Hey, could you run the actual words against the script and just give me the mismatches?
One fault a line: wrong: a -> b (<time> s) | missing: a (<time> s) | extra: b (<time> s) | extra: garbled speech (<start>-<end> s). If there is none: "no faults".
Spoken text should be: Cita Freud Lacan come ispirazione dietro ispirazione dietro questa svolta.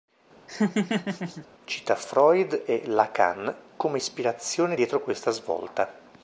extra: e (2.7 s)
missing: ispirazione dietro (5.0 s)